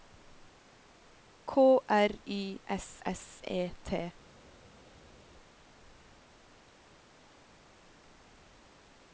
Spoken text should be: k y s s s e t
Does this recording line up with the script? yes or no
no